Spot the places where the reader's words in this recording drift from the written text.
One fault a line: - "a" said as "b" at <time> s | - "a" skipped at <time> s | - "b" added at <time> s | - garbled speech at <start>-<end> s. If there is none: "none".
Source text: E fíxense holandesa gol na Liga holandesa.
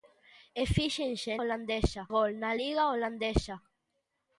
none